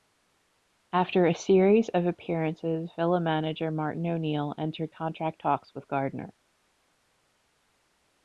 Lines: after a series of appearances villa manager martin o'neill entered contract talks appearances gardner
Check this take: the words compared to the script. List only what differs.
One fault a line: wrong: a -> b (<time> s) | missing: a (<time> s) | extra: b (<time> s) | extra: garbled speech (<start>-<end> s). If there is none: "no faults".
wrong: appearances -> with (5.7 s)